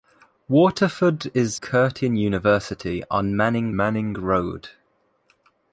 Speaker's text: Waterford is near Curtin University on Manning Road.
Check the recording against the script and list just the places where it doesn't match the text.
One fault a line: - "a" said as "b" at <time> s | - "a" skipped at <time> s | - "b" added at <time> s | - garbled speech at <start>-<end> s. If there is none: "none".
- "near" skipped at 1.6 s
- "Manning" added at 3.7 s